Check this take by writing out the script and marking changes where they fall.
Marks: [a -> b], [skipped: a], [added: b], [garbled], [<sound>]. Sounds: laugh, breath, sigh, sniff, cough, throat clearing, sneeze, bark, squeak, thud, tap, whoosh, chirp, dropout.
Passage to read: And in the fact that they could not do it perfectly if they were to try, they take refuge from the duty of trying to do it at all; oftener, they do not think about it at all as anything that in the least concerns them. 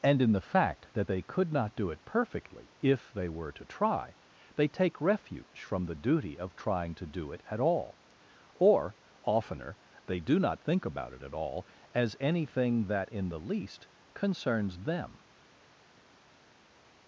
And in the fact that they could not do it perfectly if they were to try, they take refuge from the duty of trying to do it at all; [added: or] oftener, they do not think about it at all as anything that in the least concerns them.